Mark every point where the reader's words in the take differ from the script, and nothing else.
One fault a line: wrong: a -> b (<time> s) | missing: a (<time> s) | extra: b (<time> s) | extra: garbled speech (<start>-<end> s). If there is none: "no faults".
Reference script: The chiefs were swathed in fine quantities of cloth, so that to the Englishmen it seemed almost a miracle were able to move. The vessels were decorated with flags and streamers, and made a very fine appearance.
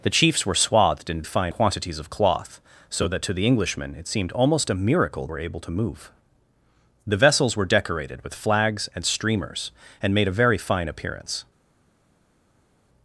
no faults